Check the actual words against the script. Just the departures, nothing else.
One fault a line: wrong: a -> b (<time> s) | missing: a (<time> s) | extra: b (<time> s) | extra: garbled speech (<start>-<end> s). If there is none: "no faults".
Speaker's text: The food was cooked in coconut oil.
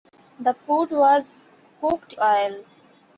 missing: in coconut (2.2 s)